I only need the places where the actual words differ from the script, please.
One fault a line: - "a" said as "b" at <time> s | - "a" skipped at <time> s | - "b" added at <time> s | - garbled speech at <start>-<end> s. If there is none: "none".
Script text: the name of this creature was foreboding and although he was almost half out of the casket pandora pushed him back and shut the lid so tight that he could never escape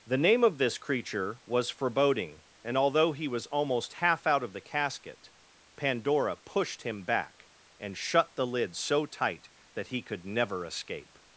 none